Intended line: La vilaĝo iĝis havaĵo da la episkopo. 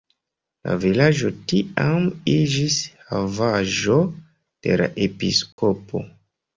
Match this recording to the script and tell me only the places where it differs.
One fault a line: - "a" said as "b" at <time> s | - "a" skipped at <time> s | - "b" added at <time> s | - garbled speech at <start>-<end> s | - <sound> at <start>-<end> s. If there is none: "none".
- "tiam" added at 1.5 s
- "da" said as "de" at 4.2 s
- dropout at 5.5-5.6 s